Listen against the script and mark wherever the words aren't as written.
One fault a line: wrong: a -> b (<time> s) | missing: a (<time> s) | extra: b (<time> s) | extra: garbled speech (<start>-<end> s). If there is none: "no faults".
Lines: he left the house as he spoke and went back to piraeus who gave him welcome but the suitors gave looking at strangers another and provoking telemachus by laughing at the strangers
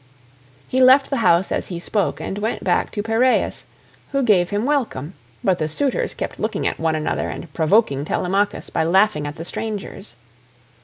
wrong: gave -> kept (6.1 s)
wrong: strangers -> one (6.8 s)